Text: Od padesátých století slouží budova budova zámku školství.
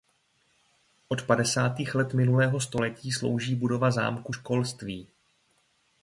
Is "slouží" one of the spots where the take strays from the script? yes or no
no